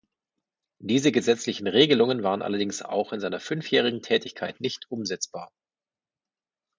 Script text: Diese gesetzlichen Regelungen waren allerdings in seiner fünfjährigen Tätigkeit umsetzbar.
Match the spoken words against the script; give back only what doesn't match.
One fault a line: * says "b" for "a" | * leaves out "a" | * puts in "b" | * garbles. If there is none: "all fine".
* puts in "auch"
* puts in "nicht"